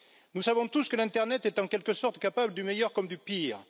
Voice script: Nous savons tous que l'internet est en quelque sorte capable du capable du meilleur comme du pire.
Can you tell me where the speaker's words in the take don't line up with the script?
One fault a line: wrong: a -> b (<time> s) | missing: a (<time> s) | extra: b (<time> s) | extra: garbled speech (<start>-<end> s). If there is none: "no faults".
missing: capable du (2.6 s)